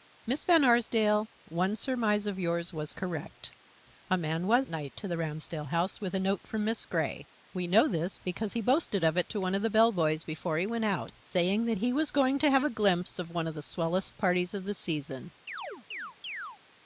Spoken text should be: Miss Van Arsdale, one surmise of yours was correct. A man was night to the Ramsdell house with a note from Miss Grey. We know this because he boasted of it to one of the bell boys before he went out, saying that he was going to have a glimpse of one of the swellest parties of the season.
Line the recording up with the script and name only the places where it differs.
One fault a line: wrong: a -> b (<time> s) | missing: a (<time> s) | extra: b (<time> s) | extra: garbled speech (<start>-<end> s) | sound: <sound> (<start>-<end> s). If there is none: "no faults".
sound: chirp (15.5-16.6 s)